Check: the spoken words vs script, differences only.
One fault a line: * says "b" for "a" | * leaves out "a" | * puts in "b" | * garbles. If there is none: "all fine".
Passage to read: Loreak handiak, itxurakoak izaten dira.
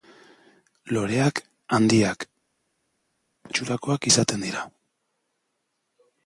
all fine